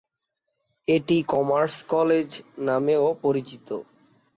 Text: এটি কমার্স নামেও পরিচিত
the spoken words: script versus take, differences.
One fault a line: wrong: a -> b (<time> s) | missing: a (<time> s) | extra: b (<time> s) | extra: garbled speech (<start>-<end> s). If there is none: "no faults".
extra: কলেজ (1.9 s)